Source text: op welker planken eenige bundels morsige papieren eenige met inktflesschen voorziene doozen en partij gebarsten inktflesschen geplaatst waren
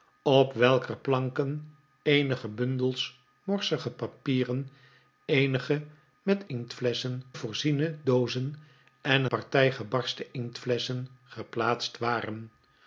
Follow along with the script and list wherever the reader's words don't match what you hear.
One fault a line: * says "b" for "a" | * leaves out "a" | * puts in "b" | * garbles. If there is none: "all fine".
all fine